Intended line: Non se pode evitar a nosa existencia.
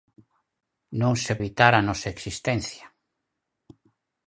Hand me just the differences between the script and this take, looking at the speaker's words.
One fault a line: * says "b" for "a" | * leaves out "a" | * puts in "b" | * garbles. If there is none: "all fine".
* leaves out "pode"